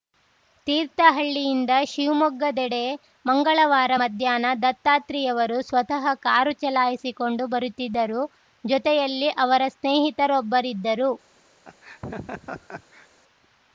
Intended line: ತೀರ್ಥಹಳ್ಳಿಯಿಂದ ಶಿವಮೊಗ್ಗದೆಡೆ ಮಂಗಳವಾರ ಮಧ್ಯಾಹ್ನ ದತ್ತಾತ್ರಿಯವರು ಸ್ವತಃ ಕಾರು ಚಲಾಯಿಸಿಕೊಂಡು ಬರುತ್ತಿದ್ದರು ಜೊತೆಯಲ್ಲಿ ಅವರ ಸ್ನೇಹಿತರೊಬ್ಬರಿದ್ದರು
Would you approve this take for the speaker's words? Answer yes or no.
yes